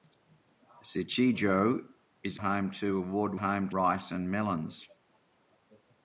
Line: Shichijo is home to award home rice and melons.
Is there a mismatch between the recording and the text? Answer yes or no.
no